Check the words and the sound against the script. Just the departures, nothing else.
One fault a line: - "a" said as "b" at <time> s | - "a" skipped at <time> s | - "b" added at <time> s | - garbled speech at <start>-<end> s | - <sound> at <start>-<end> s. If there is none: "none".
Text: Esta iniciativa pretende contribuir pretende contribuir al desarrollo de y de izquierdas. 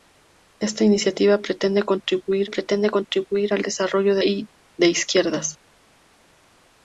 none